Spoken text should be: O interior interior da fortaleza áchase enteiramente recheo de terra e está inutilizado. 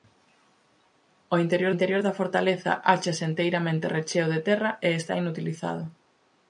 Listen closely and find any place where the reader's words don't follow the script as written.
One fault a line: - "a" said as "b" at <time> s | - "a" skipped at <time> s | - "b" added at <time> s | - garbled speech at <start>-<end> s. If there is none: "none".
none